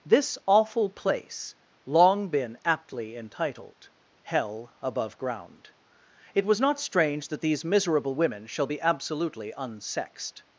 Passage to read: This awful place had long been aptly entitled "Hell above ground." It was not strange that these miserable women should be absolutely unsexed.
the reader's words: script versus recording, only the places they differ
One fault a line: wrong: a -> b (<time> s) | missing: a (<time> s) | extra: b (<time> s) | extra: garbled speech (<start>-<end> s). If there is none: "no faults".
missing: had (1.6 s)
wrong: should -> shall (8.5 s)